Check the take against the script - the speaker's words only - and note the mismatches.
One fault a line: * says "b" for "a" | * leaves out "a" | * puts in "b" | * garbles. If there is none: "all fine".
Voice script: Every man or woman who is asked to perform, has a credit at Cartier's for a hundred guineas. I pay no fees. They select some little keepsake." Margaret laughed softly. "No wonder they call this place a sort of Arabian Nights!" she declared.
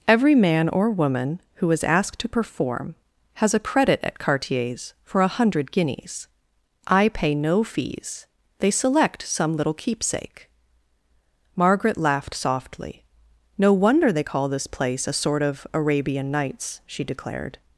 all fine